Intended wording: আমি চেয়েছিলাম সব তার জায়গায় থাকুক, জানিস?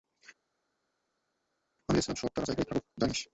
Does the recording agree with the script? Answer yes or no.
yes